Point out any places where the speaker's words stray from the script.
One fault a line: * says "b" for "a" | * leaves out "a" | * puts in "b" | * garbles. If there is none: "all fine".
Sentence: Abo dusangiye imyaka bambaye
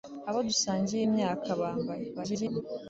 * garbles